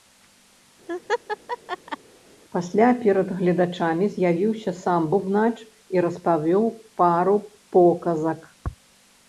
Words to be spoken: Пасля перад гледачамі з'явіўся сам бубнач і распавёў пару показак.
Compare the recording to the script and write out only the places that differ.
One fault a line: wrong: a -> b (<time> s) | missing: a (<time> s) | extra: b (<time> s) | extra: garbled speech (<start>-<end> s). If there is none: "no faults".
no faults